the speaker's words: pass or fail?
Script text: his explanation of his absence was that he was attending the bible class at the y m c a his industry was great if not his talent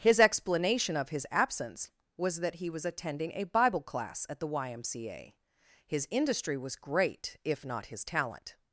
fail